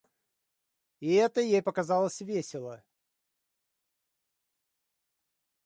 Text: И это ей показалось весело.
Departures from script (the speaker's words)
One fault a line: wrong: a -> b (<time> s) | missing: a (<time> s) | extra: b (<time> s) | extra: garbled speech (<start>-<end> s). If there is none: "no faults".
no faults